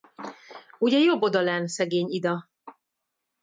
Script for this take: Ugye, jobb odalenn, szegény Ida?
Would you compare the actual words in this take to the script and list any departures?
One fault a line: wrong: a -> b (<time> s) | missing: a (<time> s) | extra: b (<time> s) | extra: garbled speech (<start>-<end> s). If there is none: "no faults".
no faults